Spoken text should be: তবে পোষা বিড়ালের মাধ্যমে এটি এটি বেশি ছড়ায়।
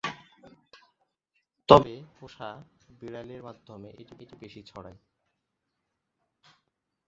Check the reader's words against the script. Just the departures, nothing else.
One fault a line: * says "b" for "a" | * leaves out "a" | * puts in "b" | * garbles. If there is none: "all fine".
all fine